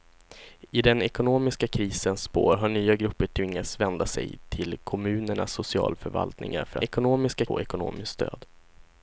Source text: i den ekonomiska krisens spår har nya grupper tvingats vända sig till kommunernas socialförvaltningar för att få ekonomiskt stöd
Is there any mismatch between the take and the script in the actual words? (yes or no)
yes